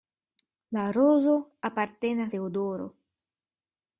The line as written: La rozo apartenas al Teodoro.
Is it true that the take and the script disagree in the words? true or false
true